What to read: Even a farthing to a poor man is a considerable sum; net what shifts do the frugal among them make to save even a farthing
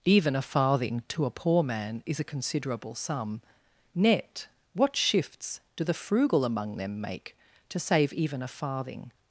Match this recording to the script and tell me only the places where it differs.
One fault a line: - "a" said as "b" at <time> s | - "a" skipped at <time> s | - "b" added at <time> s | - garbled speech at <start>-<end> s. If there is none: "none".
none